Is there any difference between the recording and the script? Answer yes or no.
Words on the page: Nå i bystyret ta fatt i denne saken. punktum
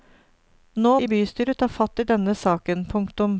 no